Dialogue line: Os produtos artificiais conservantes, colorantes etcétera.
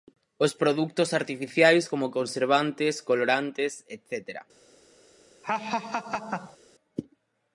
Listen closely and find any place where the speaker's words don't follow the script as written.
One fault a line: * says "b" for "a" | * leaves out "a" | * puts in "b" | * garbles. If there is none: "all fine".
* puts in "como"